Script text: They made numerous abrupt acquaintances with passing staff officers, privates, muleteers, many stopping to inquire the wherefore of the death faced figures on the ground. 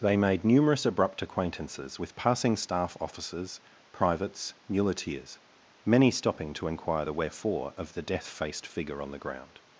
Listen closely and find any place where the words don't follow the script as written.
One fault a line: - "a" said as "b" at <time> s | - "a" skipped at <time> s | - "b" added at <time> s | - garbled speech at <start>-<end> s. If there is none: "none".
- "figures" said as "figure" at 8.7 s